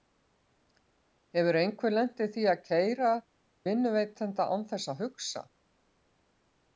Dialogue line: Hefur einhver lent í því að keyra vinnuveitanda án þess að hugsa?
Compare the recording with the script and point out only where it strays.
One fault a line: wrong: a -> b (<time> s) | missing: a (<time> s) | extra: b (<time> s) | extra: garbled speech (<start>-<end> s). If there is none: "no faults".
no faults